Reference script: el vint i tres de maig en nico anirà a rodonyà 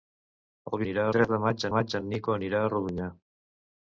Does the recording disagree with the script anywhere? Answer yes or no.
yes